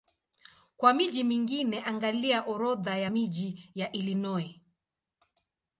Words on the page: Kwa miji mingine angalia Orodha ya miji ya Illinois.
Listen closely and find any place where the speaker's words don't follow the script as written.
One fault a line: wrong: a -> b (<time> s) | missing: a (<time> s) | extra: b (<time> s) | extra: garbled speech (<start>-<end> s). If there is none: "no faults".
no faults